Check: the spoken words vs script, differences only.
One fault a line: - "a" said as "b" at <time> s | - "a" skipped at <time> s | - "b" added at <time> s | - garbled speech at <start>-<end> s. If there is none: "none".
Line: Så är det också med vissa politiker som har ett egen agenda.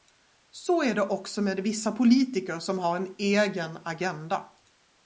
- "ett" said as "en" at 3.0 s